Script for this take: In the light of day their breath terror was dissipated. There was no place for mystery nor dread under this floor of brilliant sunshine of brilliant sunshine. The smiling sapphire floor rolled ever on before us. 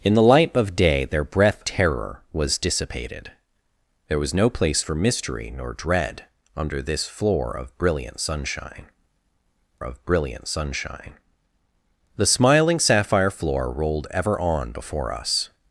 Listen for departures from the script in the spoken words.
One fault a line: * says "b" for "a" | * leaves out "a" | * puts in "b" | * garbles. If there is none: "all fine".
all fine